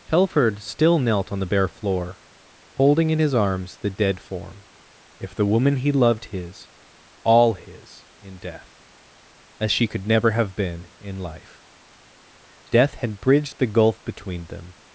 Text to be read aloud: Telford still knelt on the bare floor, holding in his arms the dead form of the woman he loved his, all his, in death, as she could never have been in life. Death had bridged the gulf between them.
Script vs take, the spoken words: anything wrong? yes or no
yes